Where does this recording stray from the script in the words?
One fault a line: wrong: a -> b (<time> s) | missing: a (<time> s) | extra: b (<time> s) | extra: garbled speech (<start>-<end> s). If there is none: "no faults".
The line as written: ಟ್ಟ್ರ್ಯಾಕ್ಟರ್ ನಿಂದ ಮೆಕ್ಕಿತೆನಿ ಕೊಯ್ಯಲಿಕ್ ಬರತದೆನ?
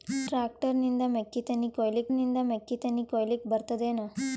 extra: ನಿಂದ ಮೆಕ್ಕಿತೆನಿ ಕೊಯ್ಯಲಿಕ್ (2.1 s)